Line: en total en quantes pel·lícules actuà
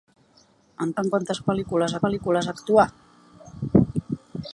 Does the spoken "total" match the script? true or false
false